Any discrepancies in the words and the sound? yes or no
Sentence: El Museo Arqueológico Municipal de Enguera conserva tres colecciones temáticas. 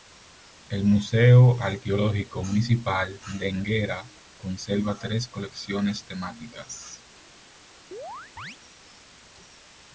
yes